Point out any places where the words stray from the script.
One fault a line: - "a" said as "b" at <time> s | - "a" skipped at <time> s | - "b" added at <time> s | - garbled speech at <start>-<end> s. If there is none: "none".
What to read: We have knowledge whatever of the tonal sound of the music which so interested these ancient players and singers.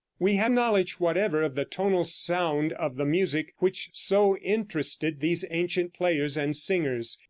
none